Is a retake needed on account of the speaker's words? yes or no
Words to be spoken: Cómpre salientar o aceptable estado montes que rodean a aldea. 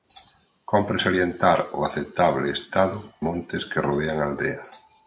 no